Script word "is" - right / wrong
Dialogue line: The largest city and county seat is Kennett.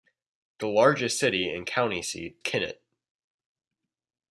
wrong